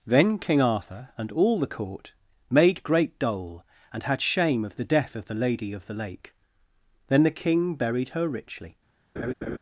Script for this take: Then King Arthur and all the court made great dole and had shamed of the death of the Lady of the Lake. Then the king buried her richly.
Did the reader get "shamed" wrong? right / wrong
wrong